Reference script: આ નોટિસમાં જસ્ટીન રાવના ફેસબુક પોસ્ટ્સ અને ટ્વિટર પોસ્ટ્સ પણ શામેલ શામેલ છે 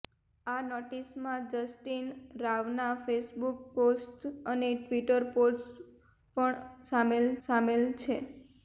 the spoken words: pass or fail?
pass